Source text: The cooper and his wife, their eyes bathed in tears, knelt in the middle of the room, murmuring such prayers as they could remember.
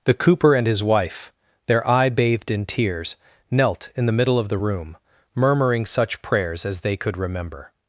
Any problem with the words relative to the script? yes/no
yes